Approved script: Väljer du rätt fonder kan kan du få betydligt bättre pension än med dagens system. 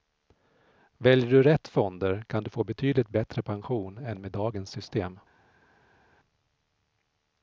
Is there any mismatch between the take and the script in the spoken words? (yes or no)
yes